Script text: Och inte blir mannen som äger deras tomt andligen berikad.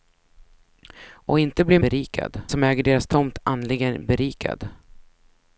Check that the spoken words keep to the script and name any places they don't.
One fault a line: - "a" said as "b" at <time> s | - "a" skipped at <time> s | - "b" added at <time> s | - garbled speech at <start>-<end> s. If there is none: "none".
- "mannen" said as "berikad" at 1.8 s